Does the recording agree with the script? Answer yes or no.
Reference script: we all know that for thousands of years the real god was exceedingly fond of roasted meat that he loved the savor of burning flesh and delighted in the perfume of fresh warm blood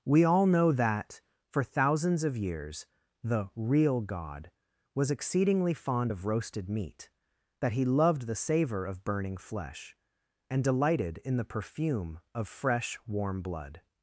yes